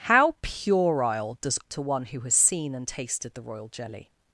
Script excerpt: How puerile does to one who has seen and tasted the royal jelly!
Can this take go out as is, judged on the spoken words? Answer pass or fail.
pass